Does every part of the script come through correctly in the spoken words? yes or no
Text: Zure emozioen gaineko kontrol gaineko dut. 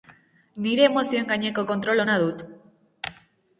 no